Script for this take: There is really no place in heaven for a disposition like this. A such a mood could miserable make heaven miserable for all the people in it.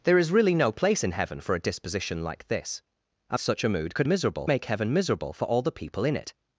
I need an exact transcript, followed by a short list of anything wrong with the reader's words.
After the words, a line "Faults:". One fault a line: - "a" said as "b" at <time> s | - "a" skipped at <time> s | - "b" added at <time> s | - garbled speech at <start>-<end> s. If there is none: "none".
There is really no place in heaven for a disposition like this. A such a mood could miserable make heaven miserable for all the people in it.
Faults:
none